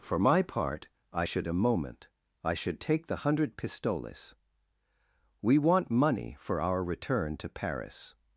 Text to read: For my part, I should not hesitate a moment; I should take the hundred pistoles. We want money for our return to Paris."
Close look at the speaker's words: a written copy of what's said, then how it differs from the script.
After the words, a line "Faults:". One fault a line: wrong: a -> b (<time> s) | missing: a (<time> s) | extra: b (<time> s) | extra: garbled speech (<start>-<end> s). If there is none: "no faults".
For my part, I should a moment; I should take the hundred pistoles. We want money for our return to Paris."
Faults:
missing: not hesitate (1.5 s)